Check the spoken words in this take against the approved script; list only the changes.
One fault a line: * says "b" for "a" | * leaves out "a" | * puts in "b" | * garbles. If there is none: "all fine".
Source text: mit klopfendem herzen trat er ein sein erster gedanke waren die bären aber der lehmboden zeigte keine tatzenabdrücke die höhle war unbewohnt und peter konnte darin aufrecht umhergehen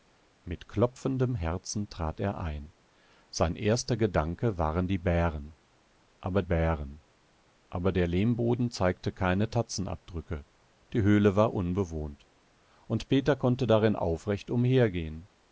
* puts in "bären aber"